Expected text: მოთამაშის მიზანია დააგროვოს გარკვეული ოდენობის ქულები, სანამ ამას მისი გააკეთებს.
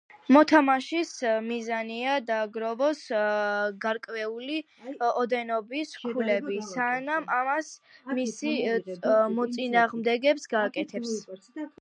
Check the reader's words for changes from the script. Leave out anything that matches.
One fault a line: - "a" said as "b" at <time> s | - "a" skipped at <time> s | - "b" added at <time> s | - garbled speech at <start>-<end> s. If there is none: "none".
- "მოწინააღმდეგე" added at 9.4 s